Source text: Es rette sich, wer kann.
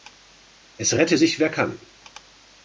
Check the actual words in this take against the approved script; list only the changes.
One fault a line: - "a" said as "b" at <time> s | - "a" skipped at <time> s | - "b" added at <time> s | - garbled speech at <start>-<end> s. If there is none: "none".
none